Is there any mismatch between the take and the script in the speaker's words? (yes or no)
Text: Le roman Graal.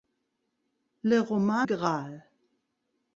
no